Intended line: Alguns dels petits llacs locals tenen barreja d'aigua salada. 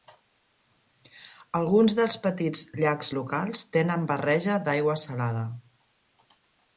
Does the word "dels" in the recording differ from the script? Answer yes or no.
no